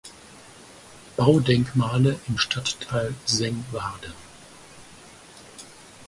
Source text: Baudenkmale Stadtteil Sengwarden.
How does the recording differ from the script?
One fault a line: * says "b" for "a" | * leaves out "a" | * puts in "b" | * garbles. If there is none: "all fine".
* puts in "im"